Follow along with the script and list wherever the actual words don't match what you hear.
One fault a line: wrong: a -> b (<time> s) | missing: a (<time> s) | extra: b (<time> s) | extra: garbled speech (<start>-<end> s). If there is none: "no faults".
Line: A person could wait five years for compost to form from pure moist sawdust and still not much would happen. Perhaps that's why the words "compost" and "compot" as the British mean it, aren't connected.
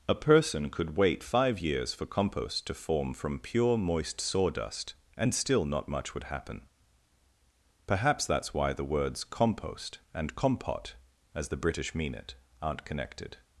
no faults